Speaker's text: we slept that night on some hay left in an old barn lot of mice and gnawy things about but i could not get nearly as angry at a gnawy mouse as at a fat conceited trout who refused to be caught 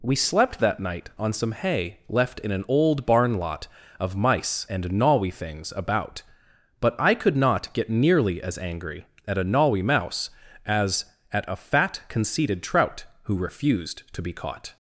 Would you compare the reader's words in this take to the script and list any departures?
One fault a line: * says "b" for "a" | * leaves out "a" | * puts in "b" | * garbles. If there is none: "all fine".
all fine